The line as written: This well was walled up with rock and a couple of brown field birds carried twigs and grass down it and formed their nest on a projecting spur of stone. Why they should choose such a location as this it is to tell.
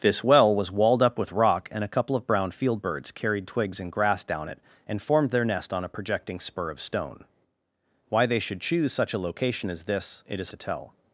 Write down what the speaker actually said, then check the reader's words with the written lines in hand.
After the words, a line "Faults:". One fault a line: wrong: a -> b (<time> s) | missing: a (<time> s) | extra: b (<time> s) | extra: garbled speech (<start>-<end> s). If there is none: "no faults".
This well was walled up with rock and a couple of brown field birds carried twigs and grass down it and formed their nest on a projecting spur of stone. Why they should choose such a location as this it is to tell.
Faults:
no faults